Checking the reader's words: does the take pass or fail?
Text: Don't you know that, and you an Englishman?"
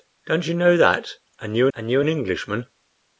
fail